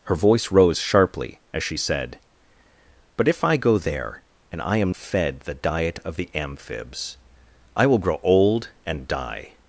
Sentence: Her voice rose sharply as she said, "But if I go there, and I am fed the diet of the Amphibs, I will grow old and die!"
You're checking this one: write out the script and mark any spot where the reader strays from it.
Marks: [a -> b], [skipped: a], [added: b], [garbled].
Her voice rose sharply as she said, "But if I go there, and I am fed the diet of the Amphibs, I will grow old and die!"